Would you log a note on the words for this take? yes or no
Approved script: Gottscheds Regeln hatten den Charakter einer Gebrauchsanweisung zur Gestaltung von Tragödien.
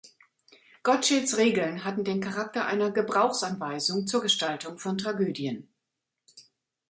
no